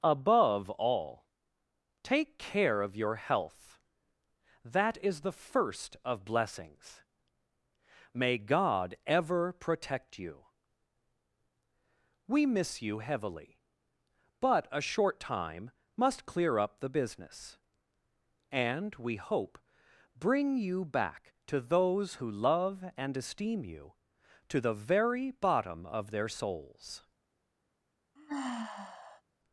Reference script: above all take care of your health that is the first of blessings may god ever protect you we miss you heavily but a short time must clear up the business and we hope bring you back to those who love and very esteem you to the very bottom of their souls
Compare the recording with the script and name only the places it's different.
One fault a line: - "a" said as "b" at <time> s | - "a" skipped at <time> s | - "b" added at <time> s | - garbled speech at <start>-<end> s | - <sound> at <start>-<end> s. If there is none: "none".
- "very" skipped at 23.2 s
- sigh at 28.2-29.2 s